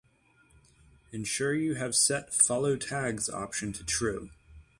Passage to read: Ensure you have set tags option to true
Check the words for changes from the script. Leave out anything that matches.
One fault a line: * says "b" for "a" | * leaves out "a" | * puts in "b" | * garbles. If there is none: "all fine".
* puts in "follow"